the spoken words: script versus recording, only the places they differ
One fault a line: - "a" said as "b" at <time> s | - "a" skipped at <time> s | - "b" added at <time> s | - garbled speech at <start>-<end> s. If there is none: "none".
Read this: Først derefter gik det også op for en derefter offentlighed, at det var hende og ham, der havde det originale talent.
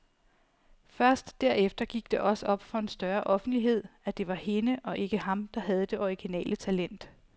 - "derefter" said as "større" at 2.9 s
- "ikke" added at 5.0 s